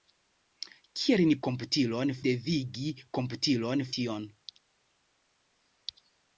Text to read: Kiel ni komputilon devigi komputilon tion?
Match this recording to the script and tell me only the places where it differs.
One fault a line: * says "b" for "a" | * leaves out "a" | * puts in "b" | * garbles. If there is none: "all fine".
all fine